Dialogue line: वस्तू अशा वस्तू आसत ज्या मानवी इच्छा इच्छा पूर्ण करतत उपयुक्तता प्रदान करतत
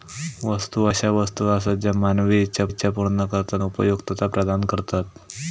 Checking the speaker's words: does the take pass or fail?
pass